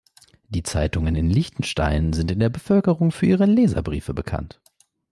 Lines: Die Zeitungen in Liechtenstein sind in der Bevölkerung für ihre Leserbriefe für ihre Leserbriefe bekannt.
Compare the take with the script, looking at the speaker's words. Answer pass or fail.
fail